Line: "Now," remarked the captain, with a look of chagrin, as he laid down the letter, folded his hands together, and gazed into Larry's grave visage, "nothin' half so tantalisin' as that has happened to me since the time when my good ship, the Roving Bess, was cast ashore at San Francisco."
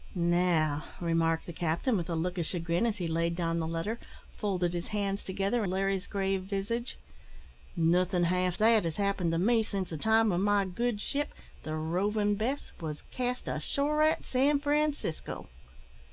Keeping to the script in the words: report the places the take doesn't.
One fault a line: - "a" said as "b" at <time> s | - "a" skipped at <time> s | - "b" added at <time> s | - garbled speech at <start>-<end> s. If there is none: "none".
- "and gazed into" skipped at 5.6 s
- "so tantalisin as" skipped at 8.5 s